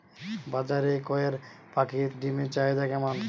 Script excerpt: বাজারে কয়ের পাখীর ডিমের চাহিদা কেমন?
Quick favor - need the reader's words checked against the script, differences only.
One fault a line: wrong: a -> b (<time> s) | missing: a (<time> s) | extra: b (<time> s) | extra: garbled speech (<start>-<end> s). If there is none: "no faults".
no faults